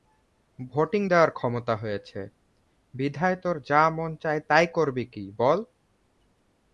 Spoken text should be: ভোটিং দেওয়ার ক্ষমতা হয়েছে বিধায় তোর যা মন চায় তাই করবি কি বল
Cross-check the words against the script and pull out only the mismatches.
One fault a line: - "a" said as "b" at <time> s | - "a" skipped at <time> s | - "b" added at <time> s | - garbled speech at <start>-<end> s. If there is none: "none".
none